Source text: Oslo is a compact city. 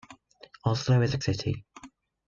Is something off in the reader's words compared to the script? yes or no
yes